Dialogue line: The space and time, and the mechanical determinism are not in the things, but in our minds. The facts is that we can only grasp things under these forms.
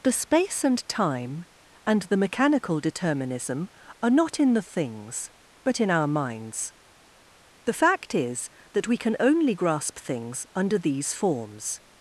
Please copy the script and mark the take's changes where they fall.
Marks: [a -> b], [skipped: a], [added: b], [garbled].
The space and time, and the mechanical determinism are not in the things, but in our minds. The [facts -> fact] is that we can only grasp things under these forms.